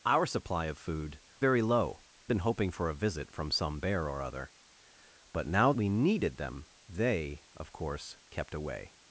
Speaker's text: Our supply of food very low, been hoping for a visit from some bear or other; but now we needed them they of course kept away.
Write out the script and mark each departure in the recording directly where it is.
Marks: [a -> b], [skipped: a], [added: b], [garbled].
Our supply of food very low, been hoping for a visit from some bear or other; but now we needed them they of course kept away.